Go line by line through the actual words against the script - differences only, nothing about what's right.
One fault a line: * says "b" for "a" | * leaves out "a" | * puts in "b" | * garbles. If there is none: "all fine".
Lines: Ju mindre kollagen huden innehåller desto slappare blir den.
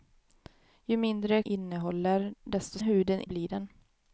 * leaves out "kollagen huden"
* says "huden" for "slappare"